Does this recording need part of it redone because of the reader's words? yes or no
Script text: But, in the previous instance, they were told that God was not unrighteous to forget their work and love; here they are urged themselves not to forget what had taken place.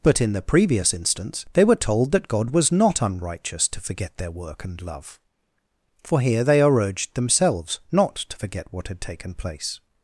yes